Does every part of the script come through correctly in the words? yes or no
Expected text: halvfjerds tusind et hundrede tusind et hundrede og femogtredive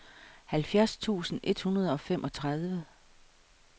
no